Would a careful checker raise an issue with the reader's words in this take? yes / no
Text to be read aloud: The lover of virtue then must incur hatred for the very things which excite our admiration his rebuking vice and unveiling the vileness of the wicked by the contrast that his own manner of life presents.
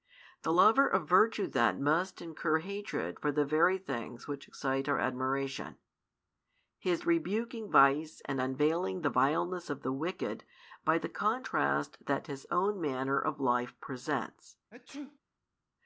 no